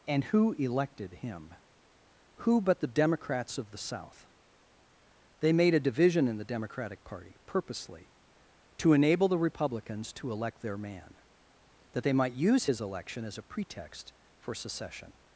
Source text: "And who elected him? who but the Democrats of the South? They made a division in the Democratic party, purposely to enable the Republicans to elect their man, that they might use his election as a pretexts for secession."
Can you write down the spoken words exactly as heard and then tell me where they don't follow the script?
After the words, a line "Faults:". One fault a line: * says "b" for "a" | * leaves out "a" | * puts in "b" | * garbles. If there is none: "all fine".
"And who elected him? who but the Democrats of the South? They made a division in the Democratic party, purposely to enable the Republicans to elect their man, that they might use his election as a pretext for secession."
Faults:
* says "pretext" for "pretexts"